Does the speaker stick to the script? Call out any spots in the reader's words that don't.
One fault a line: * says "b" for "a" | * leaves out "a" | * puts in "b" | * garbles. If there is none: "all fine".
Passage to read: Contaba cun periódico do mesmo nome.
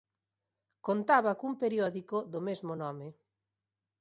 all fine